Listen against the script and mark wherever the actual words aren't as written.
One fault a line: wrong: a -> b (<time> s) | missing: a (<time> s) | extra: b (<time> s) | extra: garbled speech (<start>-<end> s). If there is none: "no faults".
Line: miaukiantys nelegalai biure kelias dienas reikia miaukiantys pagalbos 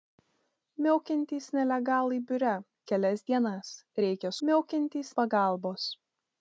no faults